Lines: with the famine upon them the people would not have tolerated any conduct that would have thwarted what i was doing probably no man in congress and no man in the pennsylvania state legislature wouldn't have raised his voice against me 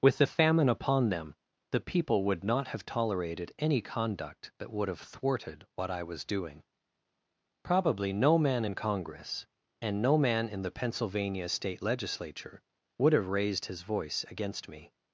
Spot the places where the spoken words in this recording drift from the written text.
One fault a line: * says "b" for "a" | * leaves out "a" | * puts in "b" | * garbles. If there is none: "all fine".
* says "would" for "wouldn't"